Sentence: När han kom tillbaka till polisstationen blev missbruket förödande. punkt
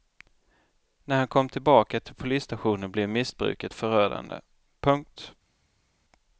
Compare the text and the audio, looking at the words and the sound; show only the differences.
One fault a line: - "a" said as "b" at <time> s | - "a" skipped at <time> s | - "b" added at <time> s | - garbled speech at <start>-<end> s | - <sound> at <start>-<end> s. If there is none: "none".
none